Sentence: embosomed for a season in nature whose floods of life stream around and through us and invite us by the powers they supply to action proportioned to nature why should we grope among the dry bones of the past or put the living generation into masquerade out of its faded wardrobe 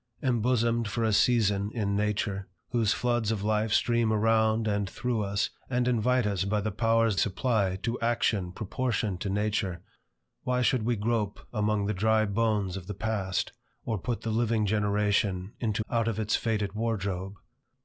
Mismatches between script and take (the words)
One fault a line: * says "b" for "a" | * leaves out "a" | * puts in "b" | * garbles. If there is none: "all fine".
* leaves out "they"
* leaves out "masquerade"